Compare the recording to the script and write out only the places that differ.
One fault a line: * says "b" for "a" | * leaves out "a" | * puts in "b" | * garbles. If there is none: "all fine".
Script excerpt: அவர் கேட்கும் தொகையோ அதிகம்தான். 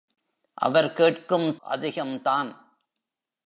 * leaves out "தொகையோ"